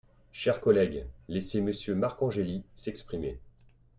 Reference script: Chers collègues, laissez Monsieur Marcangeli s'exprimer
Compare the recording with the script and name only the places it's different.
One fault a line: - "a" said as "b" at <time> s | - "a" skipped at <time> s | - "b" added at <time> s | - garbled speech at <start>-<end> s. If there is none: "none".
none